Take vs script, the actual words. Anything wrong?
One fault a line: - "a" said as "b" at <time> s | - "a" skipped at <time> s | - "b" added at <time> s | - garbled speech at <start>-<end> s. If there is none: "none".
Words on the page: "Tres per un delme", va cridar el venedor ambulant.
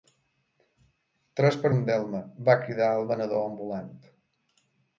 none